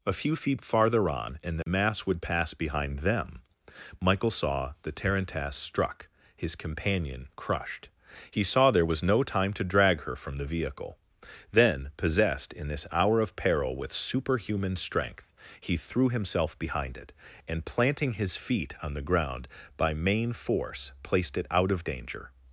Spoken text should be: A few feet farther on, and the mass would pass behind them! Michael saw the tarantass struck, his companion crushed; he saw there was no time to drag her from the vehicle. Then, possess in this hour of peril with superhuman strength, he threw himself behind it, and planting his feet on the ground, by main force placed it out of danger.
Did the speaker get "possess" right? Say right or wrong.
wrong